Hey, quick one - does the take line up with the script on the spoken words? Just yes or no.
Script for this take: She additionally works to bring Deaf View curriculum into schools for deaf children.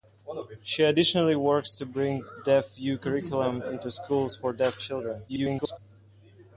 no